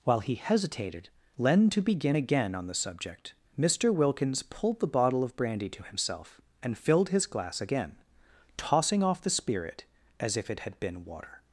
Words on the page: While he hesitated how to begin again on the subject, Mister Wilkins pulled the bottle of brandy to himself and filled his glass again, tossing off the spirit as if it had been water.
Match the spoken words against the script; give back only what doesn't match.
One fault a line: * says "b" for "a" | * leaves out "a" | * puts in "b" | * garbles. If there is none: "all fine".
* says "len" for "how"